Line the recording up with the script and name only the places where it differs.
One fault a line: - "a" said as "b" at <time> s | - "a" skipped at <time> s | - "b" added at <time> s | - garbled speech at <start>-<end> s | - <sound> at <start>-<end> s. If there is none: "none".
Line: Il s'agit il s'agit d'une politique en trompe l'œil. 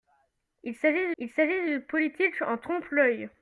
none